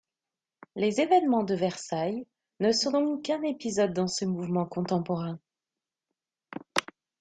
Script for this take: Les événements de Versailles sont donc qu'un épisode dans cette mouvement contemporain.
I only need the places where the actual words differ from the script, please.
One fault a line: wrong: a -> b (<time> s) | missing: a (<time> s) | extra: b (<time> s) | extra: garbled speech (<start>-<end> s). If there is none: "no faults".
extra: ne (2.6 s)
wrong: cette -> ce (4.1 s)